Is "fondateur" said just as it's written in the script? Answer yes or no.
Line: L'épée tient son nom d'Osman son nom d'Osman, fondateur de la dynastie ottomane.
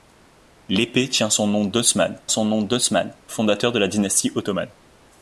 yes